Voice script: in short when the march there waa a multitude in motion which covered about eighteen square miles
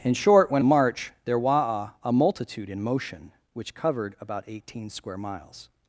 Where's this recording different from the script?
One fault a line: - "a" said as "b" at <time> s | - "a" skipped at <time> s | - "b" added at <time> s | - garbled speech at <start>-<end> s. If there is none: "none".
none